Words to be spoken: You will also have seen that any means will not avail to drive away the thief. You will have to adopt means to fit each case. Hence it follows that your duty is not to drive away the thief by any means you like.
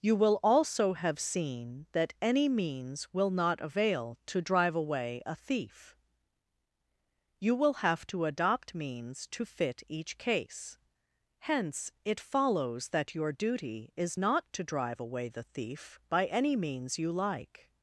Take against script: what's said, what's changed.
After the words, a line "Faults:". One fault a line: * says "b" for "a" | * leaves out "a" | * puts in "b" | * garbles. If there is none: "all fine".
You will also have seen that any means will not avail to drive away a thief. You will have to adopt means to fit each case. Hence it follows that your duty is not to drive away the thief by any means you like.
Faults:
* says "a" for "the"